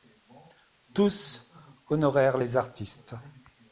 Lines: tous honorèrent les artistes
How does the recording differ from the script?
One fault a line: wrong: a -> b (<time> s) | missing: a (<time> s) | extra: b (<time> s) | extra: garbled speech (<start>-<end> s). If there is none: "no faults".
no faults